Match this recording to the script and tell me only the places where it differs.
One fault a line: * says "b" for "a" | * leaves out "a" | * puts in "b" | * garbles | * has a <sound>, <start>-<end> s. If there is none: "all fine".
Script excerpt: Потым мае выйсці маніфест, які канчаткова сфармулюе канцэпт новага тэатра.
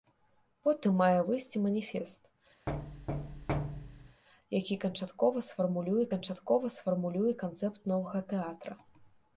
* has a thud, 2.7-4.2 s
* puts in "канчаткова сфармулюе"